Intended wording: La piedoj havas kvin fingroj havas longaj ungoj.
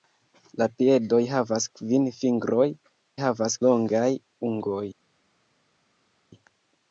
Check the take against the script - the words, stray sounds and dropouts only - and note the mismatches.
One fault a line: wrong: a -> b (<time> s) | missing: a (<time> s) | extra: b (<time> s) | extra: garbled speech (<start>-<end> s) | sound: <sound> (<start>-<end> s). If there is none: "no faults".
no faults